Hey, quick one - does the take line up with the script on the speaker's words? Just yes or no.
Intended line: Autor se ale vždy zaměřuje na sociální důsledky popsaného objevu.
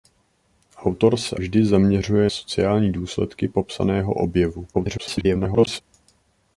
no